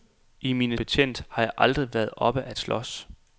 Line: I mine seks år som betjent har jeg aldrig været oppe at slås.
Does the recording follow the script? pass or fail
fail